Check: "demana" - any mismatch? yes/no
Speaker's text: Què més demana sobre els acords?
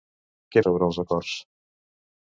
yes